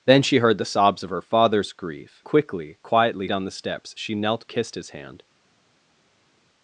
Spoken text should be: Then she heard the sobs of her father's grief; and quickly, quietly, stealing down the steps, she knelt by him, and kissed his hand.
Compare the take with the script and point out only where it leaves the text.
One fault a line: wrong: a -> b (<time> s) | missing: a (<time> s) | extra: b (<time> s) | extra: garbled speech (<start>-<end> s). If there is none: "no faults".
missing: and (2.2 s)
missing: stealing (3.3 s)
missing: by him and (4.5 s)